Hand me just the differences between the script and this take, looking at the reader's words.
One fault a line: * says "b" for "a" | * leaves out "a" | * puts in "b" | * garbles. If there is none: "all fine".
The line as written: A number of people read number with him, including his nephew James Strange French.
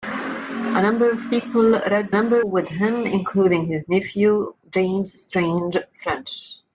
all fine